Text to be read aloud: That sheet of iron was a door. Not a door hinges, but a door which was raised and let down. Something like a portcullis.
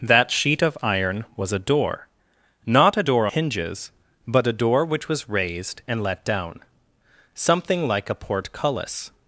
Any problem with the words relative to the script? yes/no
no